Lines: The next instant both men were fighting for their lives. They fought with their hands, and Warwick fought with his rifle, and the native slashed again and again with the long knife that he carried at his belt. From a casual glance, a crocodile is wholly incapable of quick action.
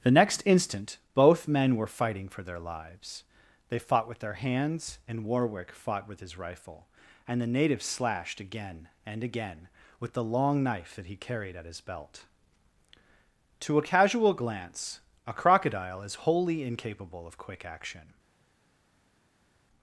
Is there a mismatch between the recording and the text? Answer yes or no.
yes